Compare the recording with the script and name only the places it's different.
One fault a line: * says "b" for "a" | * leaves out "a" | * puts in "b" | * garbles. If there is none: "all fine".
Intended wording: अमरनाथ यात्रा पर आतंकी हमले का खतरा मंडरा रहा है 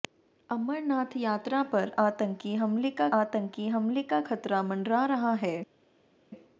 * puts in "आतंकी हमले का"